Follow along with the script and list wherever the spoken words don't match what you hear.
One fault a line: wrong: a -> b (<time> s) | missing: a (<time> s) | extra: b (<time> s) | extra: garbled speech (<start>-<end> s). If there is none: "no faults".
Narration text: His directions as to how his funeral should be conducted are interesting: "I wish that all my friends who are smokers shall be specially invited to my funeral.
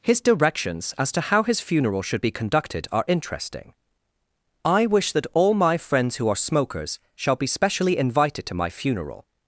no faults